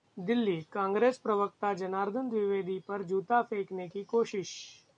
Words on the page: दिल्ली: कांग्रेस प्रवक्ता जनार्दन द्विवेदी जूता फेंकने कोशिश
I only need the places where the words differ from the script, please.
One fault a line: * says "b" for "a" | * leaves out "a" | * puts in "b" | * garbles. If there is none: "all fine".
* puts in "पर"
* puts in "की"